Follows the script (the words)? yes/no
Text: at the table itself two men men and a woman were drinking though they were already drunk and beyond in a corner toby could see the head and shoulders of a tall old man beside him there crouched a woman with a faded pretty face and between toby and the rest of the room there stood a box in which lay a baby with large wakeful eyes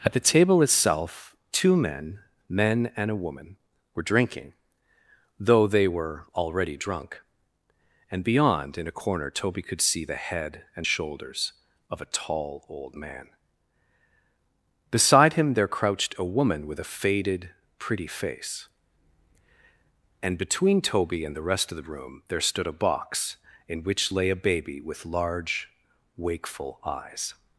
yes